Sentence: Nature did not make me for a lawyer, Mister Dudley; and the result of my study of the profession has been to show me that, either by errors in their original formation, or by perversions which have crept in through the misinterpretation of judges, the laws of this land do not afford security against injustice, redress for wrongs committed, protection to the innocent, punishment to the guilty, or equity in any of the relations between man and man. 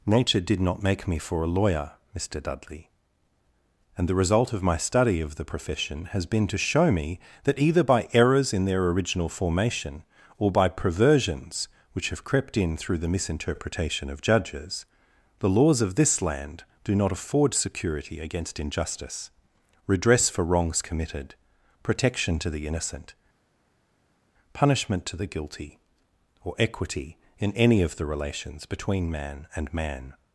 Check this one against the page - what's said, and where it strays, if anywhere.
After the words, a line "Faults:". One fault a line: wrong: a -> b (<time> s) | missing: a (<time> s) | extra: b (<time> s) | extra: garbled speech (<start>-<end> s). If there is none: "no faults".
Nature did not make me for a lawyer, Mister Dudley; and the result of my study of the profession has been to show me that, either by errors in their original formation, or by perversions which have crept in through the misinterpretation of judges, the laws of this land do not afford security against injustice, redress for wrongs committed, protection to the innocent, punishment to the guilty, or equity in any of the relations between man and man.
Faults:
no faults